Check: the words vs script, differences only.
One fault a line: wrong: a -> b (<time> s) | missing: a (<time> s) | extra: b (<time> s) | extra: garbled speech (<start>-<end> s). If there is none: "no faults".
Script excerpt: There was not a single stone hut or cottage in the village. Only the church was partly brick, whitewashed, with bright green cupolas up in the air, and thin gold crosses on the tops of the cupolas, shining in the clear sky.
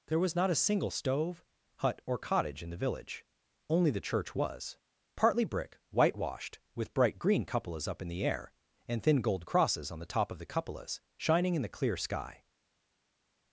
wrong: stone -> stove (0.9 s)
wrong: tops -> top (10.0 s)